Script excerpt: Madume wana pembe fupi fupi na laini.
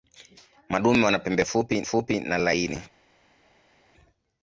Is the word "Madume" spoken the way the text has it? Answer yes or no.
yes